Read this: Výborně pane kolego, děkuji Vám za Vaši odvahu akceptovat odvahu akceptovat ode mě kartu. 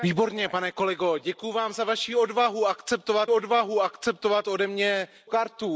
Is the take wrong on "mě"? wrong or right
right